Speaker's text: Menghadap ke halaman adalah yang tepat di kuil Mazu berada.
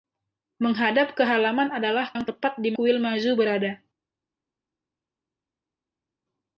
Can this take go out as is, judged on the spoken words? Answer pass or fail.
pass